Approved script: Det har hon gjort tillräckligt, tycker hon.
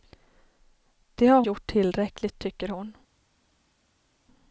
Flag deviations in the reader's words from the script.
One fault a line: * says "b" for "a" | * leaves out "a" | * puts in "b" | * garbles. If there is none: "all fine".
* leaves out "hon"